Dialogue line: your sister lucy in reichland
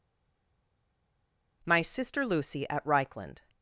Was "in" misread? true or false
true